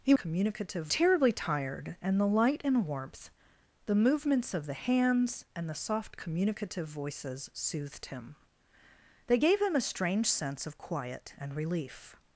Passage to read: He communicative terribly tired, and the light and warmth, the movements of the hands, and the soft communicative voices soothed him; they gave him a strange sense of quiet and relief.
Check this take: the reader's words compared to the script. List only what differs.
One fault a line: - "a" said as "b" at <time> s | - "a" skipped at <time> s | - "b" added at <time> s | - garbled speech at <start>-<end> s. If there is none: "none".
none